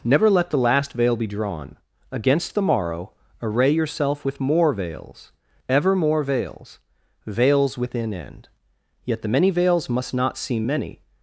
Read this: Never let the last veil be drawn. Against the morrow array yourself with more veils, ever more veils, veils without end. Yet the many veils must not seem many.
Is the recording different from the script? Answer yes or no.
yes